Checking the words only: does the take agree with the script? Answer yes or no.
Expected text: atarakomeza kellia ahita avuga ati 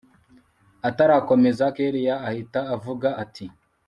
yes